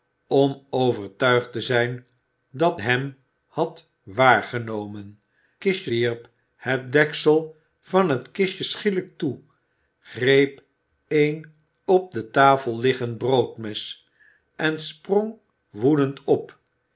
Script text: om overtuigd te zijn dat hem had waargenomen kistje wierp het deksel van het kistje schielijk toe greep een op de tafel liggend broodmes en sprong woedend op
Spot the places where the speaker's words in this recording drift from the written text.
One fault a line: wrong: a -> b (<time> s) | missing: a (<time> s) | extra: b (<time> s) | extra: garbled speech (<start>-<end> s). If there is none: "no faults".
no faults